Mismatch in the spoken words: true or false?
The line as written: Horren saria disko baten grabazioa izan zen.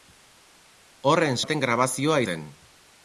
true